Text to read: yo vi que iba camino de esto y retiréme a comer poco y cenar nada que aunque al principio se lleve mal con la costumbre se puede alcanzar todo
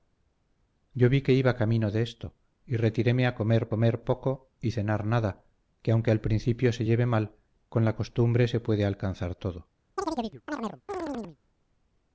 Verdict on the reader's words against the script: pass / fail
fail